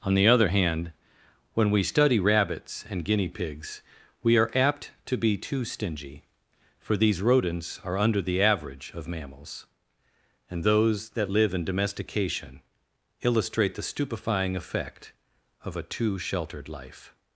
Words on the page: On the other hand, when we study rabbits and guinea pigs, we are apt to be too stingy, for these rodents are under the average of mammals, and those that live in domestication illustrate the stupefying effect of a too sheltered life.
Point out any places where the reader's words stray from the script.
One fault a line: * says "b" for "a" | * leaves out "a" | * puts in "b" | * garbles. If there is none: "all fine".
all fine